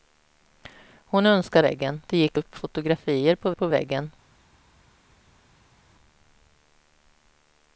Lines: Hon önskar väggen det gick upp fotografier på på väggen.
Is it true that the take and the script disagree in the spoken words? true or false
false